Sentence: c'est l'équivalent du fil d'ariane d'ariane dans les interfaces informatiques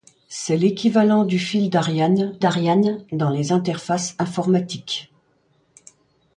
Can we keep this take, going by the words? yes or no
yes